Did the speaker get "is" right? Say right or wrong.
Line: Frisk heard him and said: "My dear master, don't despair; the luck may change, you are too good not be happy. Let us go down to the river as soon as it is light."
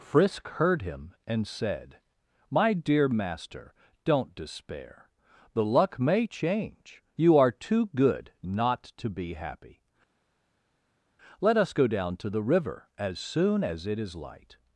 right